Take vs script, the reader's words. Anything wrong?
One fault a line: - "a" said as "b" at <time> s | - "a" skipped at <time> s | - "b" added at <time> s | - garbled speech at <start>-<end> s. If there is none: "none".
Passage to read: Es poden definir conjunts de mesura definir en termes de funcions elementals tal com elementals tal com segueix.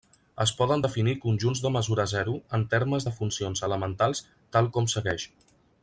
- "definir" said as "zero" at 2.1 s
- "elementals tal com" skipped at 4.9 s